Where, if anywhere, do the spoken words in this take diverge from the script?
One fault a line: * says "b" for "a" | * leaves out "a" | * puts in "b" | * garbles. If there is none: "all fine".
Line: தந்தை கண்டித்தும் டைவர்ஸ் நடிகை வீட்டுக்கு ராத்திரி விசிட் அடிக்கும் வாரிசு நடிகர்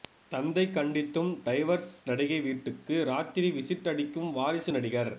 all fine